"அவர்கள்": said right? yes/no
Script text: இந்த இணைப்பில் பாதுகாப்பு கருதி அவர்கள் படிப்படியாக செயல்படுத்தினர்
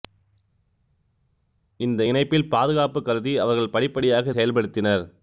yes